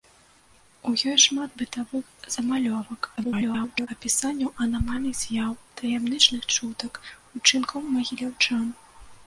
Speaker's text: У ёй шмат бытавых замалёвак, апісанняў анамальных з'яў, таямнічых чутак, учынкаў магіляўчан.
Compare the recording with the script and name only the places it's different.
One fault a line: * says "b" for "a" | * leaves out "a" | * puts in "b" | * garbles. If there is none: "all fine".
* garbles